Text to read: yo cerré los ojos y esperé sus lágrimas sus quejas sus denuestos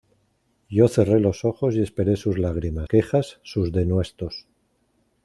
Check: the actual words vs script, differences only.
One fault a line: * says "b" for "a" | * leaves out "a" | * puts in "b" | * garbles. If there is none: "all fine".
* leaves out "sus"